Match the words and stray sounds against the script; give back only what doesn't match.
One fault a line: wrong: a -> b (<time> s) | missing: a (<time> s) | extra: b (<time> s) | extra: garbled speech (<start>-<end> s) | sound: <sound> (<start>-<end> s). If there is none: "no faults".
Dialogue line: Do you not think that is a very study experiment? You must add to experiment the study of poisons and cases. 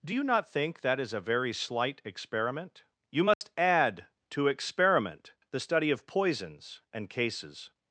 wrong: study -> slight (1.5 s)
sound: dropout (3.3-3.4 s)